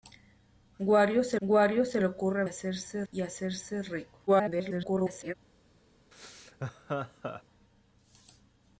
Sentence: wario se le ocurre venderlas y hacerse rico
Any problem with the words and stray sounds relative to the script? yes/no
yes